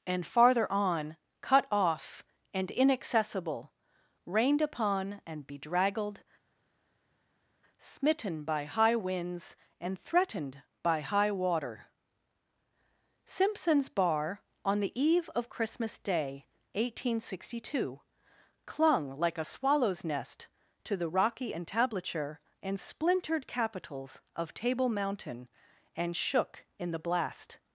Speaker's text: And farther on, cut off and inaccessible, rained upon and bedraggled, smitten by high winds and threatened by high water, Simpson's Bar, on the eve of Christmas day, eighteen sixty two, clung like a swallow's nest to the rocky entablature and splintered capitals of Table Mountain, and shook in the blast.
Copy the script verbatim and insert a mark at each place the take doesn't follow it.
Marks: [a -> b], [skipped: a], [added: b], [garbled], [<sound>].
And farther on, cut off and inaccessible, rained upon and bedraggled, smitten by high winds and threatened by high water, Simpson's Bar, on the eve of Christmas day, eighteen sixty two, clung like a swallow's nest to the rocky entablature and splintered capitals of Table Mountain, and shook in the blast.